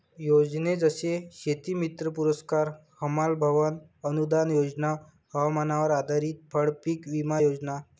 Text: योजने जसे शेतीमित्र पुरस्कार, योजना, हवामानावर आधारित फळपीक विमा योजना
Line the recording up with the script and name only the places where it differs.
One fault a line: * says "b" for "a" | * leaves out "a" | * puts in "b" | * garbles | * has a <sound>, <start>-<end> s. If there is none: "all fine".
* puts in "हमाल भवन अनूदान"